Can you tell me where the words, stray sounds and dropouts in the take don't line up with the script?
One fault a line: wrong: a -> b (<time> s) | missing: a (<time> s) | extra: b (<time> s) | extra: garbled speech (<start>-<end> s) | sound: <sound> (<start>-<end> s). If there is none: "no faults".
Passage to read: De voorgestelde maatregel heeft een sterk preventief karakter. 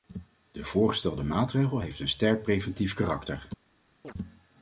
sound: chirp (4.0-4.1 s)